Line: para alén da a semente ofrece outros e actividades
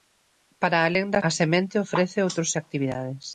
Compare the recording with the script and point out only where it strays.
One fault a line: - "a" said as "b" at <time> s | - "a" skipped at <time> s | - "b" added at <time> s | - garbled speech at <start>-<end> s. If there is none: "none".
none